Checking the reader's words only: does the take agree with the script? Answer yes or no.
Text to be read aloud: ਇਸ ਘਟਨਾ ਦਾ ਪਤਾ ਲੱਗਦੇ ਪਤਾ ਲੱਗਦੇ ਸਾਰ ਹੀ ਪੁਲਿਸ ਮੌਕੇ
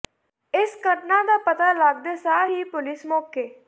no